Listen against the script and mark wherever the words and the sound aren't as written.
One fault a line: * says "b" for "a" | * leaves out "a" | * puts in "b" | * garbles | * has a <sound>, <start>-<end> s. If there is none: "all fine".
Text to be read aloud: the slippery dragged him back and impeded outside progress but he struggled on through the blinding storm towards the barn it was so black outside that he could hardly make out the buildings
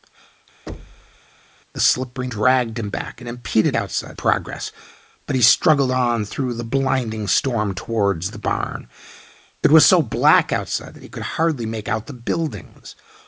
* has a thud, 0.7-1.2 s